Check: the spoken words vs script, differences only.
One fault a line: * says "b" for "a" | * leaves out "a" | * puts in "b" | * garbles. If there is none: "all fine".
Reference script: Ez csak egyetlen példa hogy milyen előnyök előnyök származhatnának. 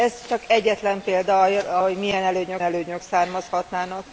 all fine